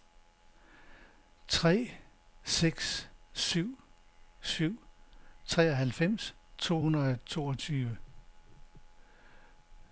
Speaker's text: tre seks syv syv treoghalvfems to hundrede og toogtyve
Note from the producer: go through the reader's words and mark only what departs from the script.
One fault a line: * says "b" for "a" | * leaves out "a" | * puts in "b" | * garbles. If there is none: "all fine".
all fine